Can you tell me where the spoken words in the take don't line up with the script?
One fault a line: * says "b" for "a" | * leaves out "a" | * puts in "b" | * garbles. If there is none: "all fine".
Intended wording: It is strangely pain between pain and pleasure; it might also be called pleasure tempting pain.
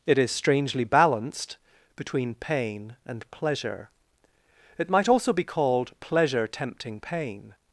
* says "balanced" for "pain"